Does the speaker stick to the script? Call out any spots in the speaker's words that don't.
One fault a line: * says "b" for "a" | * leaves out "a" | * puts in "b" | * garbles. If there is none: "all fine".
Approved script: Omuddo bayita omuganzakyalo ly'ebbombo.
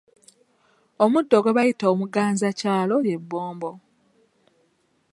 * puts in "gwe"